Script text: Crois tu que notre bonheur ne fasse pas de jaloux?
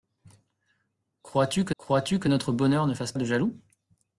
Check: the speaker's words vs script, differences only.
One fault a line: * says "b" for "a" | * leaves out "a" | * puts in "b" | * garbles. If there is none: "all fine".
* puts in "crois tu que"
* leaves out "pas"